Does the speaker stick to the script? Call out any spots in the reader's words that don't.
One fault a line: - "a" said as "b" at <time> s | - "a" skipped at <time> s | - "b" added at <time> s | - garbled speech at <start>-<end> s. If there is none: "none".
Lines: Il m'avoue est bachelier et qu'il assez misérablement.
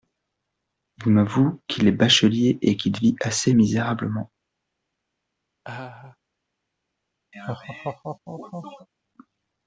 - "qu'il" added at 1.7 s
- "vit" added at 3.0 s